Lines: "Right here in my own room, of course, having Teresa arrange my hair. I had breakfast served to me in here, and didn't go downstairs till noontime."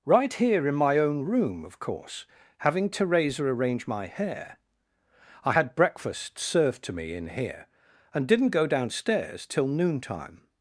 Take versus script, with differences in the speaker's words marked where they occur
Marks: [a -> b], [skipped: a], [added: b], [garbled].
"Right here in my own room, of course, having Teresa arrange my hair. I had breakfast served to me in here, and didn't go downstairs till noontime."